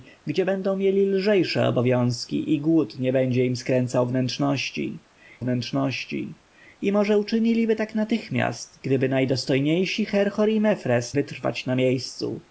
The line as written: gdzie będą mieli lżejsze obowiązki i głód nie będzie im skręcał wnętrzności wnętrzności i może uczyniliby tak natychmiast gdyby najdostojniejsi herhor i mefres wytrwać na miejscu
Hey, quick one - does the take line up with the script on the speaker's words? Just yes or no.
yes